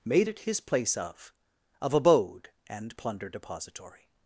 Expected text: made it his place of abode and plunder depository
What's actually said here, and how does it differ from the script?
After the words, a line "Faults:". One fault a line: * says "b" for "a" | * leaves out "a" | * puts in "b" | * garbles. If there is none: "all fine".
made it his place of of abode and plunder depository
Faults:
* puts in "of"